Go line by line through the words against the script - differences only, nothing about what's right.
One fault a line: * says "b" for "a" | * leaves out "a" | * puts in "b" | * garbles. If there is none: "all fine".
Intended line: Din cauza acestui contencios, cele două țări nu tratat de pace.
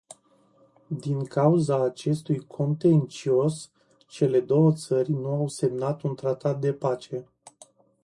* puts in "au semnat un"